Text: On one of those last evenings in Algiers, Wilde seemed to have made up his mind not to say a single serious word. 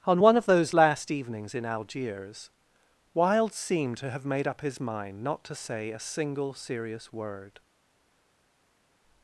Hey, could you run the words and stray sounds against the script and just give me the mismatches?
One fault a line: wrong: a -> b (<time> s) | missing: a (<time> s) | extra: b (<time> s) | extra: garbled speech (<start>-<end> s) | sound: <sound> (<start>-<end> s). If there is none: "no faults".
no faults